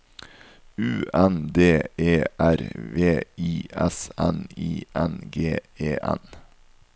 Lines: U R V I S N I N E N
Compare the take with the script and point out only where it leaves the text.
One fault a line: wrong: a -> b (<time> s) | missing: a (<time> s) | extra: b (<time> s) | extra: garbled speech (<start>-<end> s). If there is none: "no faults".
extra: N D E (1.1 s)
extra: G (5.3 s)